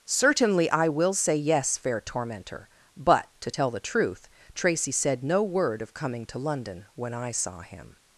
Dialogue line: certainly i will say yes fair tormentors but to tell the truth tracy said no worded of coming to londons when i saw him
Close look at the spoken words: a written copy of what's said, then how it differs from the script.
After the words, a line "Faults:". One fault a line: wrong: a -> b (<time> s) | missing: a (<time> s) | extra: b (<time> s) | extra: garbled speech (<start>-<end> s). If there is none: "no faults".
certainly i will say yes fair tormentor but to tell the truth tracy said no word of coming to london when i saw him
Faults:
wrong: tormentors -> tormentor (2.0 s)
wrong: worded -> word (5.4 s)
wrong: londons -> london (6.4 s)